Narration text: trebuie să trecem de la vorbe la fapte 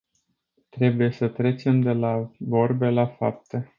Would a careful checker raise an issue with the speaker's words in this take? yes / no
no